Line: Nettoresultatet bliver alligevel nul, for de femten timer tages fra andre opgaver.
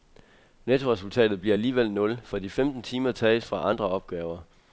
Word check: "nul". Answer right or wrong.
right